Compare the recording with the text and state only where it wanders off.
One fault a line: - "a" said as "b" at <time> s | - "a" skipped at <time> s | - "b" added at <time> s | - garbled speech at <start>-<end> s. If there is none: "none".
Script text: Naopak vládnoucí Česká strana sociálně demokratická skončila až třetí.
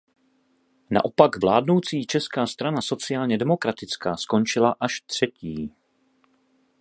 none